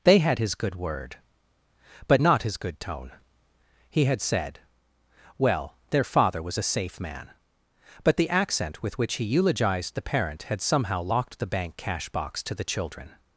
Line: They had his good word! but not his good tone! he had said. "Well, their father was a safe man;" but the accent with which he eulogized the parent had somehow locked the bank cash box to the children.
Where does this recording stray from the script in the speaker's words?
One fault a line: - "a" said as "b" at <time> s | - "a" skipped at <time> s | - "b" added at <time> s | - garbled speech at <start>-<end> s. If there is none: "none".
none